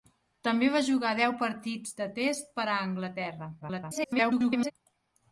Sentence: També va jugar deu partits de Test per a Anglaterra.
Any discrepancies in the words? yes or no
yes